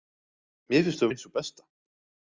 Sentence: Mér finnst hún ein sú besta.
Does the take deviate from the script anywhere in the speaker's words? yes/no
no